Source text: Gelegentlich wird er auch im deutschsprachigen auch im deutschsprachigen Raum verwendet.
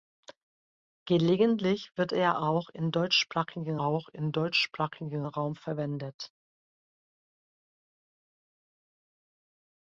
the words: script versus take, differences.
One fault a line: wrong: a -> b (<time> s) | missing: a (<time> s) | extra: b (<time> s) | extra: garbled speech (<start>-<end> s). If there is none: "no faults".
no faults